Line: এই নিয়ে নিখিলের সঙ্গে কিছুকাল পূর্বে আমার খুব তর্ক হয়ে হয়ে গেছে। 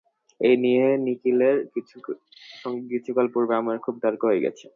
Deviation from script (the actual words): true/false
true